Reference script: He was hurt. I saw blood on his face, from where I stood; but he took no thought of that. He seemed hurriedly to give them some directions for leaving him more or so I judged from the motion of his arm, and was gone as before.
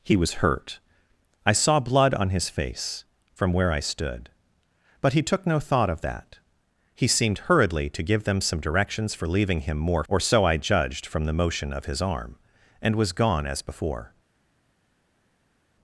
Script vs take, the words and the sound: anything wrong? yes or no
no